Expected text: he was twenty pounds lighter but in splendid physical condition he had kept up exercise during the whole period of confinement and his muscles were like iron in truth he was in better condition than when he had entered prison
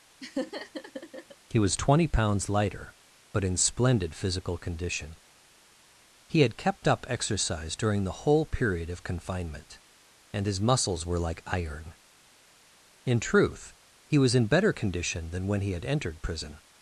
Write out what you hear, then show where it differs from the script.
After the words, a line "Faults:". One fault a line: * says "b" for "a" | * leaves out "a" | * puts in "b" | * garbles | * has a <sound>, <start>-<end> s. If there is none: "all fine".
he was twenty pounds lighter but in splendid physical condition he had kept up exercise during the whole period of confinement and his muscles were like iron in truth he was in better condition than when he had entered prison
Faults:
* has a laugh, 0.2-1.4 s